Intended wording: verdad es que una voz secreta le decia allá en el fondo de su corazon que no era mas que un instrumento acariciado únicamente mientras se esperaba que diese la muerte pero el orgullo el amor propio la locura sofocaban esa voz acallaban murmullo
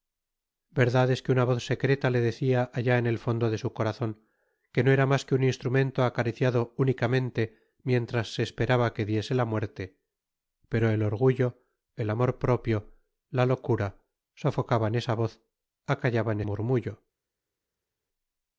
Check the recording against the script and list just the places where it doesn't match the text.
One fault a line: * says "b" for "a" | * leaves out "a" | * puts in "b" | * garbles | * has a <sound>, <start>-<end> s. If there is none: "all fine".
all fine